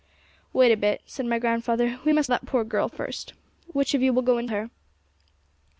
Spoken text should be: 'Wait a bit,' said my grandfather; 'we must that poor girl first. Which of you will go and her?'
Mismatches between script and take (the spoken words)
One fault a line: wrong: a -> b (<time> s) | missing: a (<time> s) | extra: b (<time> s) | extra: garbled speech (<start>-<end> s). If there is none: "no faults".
no faults